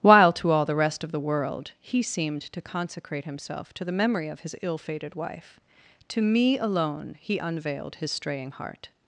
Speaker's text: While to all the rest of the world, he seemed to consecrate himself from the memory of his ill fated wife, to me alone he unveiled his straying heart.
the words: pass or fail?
fail